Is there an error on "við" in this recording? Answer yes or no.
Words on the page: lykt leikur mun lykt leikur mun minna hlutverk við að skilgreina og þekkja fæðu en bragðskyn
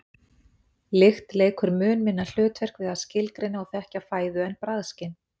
no